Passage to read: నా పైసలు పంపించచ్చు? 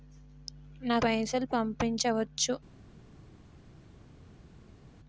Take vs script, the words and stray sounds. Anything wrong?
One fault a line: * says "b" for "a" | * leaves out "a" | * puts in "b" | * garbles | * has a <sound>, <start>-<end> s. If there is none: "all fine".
all fine